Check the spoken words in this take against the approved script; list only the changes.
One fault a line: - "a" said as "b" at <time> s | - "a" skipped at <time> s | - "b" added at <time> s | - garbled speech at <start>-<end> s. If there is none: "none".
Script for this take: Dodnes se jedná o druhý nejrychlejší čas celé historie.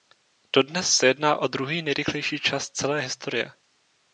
none